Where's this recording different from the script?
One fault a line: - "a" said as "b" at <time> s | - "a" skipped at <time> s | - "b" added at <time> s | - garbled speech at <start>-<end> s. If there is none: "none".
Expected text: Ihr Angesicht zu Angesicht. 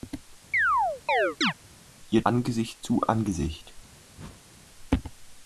none